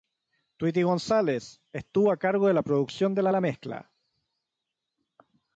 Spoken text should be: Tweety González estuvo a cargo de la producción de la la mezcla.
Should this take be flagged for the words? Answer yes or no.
no